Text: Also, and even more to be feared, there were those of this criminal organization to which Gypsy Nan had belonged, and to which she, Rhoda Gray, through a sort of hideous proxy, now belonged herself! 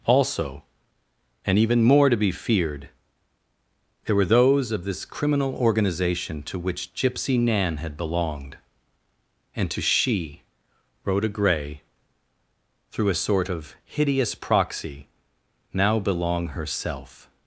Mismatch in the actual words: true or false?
true